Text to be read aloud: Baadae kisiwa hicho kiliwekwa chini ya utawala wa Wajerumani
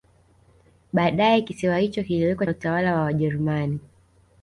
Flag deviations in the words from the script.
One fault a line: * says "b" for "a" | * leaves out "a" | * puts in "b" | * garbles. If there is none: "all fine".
* leaves out "chini"